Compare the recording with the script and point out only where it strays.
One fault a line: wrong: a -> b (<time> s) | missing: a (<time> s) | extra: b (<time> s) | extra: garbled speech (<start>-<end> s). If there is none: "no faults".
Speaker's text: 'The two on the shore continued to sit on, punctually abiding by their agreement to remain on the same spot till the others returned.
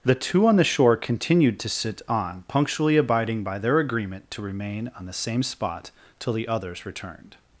no faults